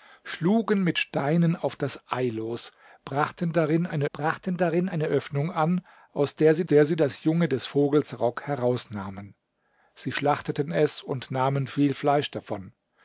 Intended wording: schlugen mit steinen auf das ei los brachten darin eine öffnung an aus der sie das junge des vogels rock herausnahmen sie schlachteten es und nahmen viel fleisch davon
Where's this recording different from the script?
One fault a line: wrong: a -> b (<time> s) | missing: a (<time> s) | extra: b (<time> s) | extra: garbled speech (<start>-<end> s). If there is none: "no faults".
extra: brachten darin eine (4.1 s)
extra: der sie (6.6 s)